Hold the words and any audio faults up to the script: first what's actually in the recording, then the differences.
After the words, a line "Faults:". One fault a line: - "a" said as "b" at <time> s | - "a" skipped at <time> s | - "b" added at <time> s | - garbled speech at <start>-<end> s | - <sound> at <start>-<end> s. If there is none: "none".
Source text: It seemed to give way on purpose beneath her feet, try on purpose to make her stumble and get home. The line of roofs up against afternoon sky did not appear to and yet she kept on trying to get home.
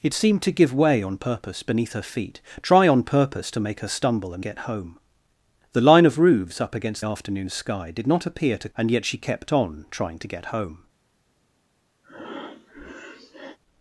It seemed to give way on purpose beneath her feet, try on purpose to make her stumble and get home. The line of roofs up against afternoon sky did not appear to and yet she kept on trying to get home.
Faults:
- breath at 12.0-13.6 s